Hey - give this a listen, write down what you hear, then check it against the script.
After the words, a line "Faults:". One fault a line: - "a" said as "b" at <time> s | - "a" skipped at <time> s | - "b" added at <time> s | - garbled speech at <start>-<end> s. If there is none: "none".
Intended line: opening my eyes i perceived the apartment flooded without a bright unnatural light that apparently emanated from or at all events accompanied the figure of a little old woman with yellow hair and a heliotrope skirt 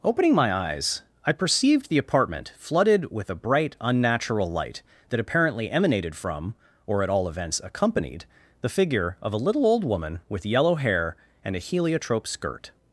opening my eyes i perceived the apartment flooded with a bright unnatural light that apparently emanated from or at all events accompanied the figure of a little old woman with yellow hair and a heliotrope skirt
Faults:
- "without" said as "with" at 3.1 s